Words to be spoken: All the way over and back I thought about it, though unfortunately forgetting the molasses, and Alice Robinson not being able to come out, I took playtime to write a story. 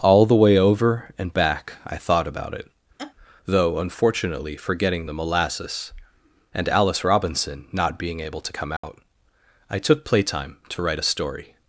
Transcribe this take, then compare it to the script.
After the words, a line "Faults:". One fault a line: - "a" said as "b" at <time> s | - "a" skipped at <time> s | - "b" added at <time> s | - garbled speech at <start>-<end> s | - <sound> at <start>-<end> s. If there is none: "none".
All the way over and back I thought about it, though unfortunately forgetting the molasses, and Alice Robinson not being able to come out, I took playtime to write a story.
Faults:
- laugh at 3.0-3.1 s
- dropout at 8.8-8.8 s